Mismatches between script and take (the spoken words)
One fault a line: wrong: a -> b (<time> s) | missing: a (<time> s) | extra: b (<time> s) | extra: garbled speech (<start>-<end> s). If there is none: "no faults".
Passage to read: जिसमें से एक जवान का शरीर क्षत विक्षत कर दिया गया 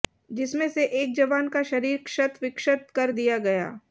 no faults